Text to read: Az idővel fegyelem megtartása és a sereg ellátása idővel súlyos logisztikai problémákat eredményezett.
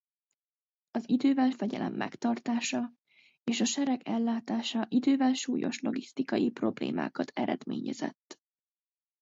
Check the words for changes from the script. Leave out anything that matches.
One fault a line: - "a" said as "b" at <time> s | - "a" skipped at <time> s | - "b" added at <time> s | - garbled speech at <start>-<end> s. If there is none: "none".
none